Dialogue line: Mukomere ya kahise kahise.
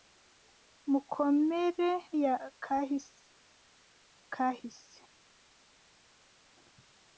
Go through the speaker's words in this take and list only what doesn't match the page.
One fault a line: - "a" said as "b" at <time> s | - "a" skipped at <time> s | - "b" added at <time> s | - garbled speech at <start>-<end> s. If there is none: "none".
none